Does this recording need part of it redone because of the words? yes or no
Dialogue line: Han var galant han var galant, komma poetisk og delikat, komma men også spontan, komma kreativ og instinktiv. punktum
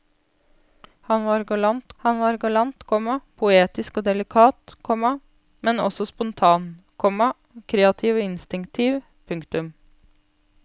no